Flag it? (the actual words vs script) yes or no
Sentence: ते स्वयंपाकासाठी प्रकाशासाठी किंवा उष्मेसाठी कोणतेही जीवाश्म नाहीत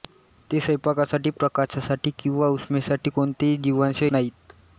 no